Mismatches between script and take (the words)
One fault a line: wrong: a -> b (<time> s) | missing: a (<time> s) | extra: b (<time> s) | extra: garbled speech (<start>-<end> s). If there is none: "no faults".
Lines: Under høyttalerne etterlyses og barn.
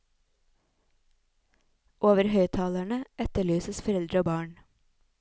wrong: Under -> Over (2.1 s)
extra: foreldre (3.9 s)